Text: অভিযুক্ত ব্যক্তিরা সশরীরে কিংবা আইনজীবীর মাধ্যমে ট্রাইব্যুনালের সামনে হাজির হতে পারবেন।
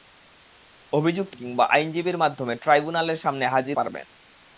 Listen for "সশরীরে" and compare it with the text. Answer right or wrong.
wrong